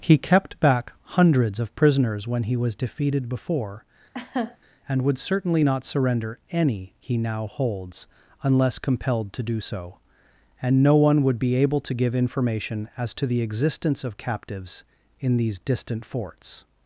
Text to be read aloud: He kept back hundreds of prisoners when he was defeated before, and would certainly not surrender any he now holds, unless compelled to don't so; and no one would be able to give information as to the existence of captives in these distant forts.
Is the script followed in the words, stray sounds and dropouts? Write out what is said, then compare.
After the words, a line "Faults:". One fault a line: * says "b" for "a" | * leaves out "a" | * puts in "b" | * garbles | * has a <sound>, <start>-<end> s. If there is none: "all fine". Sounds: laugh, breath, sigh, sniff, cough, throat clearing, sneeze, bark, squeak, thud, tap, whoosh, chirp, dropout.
He kept back hundreds of prisoners when he was defeated before, and would certainly not surrender any he now holds, unless compelled to do so; and no one would be able to give information as to the existence of captives in these distant forts.
Faults:
* has a laugh, 4.1-4.6 s
* says "do" for "don't"